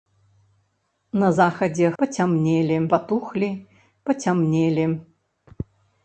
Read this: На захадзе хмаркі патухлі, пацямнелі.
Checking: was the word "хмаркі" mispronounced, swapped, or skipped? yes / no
yes